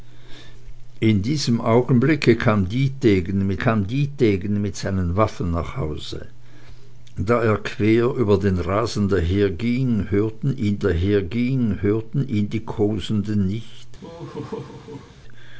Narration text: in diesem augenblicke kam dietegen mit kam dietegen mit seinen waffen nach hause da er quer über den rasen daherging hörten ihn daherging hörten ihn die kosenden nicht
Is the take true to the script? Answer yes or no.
yes